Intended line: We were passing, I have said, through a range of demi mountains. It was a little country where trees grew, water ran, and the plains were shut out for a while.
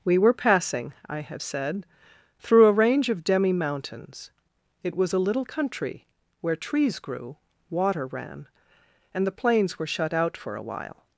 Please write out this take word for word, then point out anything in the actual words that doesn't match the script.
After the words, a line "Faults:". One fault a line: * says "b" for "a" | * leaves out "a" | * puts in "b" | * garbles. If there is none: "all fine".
We were passing, I have said, through a range of demi mountains. It was a little country where trees grew, water ran, and the plains were shut out for a while.
Faults:
all fine